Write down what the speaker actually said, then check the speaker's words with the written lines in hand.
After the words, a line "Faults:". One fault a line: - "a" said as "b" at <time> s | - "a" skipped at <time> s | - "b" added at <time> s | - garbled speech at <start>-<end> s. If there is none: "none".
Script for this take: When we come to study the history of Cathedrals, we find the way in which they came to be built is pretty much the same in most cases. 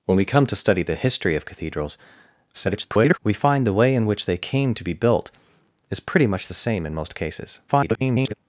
When we come to study the history of Cathedrals, [garbled] we find the way in which they came to be built is pretty much the same in most cases. [garbled]
Faults:
- garbled speech at 2.5-3.2 s
- garbled speech at 7.7-8.3 s